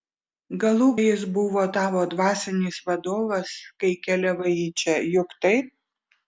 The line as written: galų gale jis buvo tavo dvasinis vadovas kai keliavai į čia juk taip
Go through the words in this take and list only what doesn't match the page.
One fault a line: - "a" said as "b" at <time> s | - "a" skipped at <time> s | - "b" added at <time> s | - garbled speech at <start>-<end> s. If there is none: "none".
- "gale" skipped at 0.9 s